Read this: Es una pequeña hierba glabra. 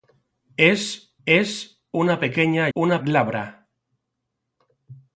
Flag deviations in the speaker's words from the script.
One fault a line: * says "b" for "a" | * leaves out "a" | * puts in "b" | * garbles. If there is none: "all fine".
* puts in "es"
* says "una" for "hierba"